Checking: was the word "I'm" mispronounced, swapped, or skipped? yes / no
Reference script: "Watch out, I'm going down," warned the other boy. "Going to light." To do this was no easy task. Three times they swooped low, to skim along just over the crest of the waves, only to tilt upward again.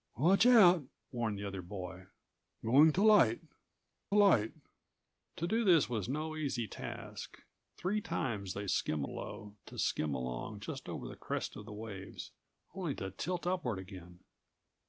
yes